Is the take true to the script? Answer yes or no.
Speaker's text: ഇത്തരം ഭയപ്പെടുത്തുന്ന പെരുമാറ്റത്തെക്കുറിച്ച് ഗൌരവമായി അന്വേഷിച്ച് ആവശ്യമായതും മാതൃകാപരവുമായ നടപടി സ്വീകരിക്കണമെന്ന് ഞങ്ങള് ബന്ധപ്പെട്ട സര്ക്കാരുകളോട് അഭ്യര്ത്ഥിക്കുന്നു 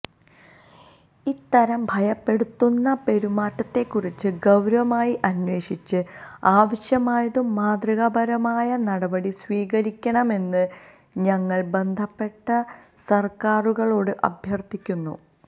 yes